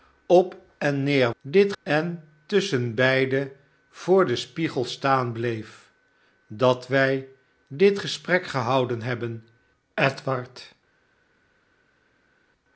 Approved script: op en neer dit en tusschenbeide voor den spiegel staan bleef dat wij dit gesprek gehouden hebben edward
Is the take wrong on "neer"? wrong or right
right